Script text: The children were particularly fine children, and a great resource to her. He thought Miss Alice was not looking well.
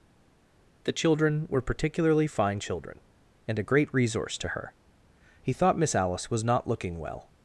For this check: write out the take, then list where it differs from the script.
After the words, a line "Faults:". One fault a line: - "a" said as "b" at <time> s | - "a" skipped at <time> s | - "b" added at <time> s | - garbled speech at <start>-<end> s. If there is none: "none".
The children were particularly fine children, and a great resource to her. He thought Miss Alice was not looking well.
Faults:
none